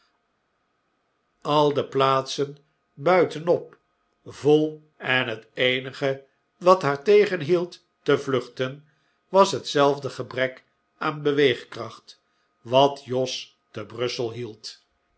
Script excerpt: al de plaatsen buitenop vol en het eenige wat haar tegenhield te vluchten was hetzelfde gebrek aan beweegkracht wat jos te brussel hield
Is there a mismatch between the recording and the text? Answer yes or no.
no